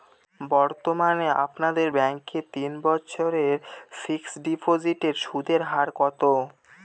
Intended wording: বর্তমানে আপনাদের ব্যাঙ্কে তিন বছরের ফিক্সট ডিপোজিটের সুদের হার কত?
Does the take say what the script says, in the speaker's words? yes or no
yes